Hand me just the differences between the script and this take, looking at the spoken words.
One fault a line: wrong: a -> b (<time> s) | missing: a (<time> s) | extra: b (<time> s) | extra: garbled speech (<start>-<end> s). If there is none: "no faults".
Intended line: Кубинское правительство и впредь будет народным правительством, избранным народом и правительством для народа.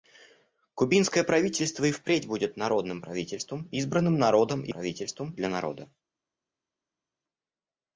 no faults